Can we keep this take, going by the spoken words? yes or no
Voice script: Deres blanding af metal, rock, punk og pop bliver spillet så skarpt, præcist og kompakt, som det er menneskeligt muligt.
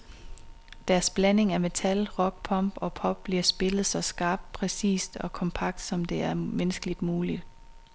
yes